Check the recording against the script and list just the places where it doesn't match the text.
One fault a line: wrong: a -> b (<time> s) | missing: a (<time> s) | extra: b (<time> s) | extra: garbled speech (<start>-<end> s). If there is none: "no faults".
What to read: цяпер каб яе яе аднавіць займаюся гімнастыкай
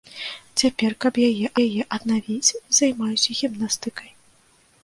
no faults